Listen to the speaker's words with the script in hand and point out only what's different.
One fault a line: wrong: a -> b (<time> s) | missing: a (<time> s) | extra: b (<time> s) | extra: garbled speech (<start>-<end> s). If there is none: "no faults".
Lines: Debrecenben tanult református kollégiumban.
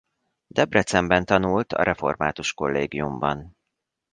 extra: a (1.7 s)